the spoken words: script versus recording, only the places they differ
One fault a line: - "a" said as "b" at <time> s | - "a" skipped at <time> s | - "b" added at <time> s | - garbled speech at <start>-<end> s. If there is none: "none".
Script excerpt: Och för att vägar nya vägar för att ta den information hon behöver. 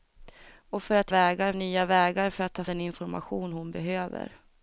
none